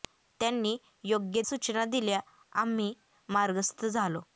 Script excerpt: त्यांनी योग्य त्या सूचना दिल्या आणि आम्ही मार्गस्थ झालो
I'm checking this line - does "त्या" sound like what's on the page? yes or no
no